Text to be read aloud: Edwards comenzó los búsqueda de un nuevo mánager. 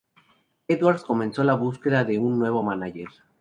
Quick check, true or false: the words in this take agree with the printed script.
false